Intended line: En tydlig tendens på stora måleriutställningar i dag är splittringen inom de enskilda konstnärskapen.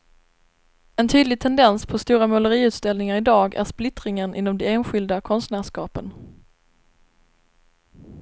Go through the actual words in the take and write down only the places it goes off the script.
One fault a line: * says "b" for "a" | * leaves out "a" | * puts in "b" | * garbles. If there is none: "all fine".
all fine